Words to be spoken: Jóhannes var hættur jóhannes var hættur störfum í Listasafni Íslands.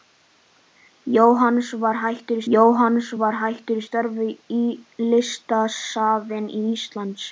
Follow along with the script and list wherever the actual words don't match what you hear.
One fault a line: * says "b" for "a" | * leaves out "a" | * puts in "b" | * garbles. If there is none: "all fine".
all fine